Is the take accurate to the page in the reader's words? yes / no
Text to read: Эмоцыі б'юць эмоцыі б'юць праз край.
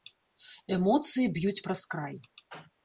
no